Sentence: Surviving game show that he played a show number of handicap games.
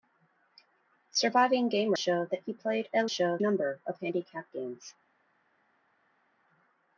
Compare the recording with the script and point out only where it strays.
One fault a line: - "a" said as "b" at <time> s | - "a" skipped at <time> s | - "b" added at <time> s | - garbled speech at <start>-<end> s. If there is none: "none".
none